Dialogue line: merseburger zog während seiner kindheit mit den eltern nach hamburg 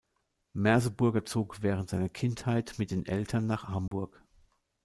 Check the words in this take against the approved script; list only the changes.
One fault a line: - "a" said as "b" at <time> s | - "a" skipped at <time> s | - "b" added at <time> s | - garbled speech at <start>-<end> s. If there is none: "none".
none